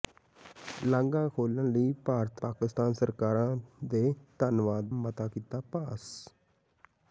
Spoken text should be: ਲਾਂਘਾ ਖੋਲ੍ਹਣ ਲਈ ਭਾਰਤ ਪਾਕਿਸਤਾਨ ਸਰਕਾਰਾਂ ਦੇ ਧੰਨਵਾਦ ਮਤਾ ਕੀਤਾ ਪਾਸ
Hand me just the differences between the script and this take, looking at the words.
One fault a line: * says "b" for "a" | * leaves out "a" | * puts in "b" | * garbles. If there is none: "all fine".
all fine